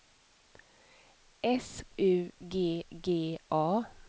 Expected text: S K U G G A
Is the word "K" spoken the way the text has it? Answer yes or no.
no